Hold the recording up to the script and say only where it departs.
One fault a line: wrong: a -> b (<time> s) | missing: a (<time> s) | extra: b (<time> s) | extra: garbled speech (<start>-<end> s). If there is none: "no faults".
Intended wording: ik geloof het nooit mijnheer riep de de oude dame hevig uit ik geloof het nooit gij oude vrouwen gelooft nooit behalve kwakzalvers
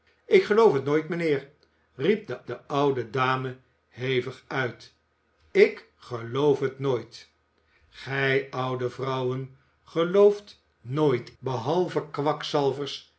no faults